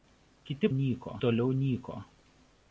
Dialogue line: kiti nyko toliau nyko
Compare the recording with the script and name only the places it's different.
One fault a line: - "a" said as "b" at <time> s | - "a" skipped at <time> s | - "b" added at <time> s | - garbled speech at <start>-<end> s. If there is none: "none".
none